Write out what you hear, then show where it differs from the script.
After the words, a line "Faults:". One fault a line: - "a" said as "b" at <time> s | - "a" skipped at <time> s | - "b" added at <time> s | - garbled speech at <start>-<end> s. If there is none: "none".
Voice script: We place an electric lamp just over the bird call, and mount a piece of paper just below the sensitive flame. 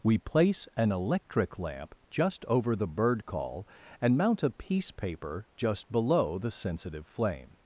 We place an electric lamp just over the bird call, and mount a piece paper just below the sensitive flame.
Faults:
- "of" skipped at 4.9 s